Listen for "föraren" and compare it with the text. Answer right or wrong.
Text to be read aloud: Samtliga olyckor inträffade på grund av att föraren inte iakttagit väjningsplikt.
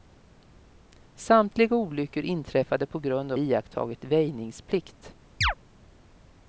wrong